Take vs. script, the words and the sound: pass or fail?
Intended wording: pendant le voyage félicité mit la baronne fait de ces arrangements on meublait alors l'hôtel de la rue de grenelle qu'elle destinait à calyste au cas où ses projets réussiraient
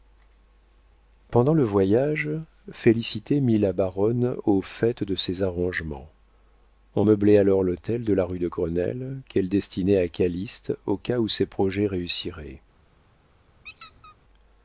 fail